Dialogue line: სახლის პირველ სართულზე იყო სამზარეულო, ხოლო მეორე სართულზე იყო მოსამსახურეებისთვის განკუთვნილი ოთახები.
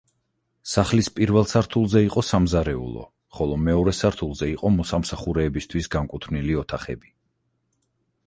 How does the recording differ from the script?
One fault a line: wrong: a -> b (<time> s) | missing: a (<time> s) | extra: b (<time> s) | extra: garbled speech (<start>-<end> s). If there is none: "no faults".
no faults